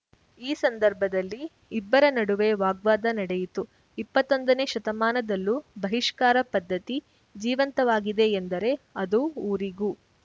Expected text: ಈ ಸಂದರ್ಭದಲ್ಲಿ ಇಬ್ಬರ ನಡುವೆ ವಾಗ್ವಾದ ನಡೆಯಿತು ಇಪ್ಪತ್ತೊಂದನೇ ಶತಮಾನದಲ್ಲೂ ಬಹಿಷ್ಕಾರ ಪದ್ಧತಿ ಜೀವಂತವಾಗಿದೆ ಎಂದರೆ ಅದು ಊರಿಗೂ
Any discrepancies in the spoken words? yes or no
no